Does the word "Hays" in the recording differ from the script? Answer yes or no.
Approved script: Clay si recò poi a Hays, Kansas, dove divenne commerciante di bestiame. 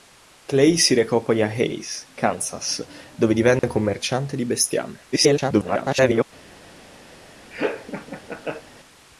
no